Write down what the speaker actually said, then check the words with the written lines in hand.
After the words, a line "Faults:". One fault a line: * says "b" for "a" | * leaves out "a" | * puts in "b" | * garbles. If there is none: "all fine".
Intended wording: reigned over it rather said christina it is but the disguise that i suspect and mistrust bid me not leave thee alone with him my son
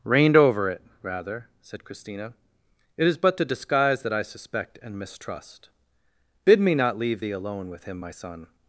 reigned over it rather said christina it is but the disguise that i suspect and mistrust bid me not leave thee alone with him my son
Faults:
all fine